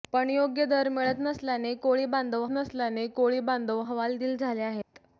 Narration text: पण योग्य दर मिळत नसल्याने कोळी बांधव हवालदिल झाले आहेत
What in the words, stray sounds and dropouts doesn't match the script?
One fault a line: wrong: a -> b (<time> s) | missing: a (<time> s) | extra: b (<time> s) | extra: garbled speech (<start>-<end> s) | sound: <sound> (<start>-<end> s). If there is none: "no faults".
extra: नसल्याने कोळी बांधव (2.5 s)
sound: dropout (4.8-4.9 s)